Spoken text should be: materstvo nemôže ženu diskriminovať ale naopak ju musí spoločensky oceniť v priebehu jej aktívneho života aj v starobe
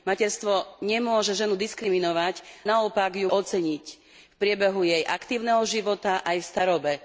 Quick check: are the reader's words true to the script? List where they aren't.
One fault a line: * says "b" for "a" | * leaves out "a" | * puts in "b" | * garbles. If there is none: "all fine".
* leaves out "ale"
* leaves out "musí spoločensky"